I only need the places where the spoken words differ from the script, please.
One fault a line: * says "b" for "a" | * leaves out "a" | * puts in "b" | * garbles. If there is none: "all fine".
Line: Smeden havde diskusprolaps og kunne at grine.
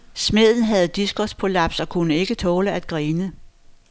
* puts in "ikke tåle"